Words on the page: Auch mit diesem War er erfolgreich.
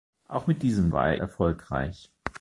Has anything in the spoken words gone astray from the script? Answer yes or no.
no